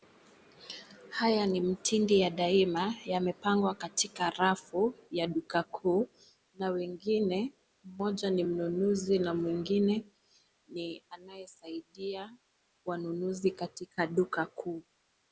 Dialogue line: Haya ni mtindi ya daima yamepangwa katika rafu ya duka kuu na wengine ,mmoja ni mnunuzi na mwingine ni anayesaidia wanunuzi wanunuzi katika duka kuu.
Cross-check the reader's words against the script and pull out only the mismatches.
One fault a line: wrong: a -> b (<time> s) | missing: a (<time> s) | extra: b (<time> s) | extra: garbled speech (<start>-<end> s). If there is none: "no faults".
missing: wanunuzi (13.5 s)